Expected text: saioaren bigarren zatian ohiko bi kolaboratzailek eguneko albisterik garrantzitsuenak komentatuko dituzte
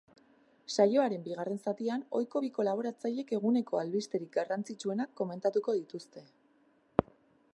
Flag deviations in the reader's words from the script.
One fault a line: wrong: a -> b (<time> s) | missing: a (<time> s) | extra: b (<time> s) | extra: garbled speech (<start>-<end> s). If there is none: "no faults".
no faults